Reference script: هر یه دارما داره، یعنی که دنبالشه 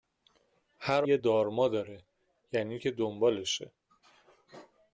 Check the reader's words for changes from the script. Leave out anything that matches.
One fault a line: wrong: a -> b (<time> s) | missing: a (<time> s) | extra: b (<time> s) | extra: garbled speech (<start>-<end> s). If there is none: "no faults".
no faults